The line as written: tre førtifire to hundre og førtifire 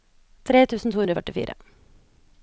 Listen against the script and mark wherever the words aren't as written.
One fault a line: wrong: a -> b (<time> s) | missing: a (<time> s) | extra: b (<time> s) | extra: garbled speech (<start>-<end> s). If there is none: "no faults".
wrong: førtifire -> tusen (0.7 s)